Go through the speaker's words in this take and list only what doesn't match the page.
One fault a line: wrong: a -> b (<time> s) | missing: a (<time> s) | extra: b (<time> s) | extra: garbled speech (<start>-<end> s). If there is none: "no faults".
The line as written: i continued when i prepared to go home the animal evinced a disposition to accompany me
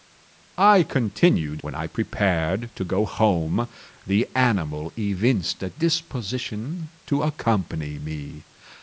no faults